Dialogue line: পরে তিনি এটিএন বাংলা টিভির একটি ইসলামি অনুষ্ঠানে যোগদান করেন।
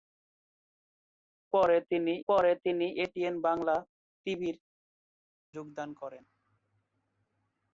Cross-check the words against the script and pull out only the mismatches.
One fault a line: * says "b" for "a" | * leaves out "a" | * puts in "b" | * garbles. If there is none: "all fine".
* puts in "পরে তিনি"
* leaves out "একটি ইসলামি অনুষ্ঠানে"